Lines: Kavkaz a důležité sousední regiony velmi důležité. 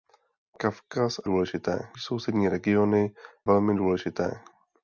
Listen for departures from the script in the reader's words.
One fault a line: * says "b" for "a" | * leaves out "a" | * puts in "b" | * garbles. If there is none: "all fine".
all fine